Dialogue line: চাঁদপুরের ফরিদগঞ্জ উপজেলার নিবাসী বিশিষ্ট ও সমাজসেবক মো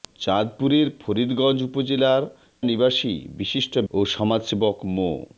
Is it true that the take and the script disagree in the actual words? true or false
false